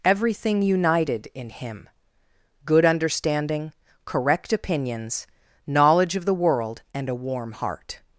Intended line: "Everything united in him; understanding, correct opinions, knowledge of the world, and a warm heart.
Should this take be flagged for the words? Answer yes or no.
yes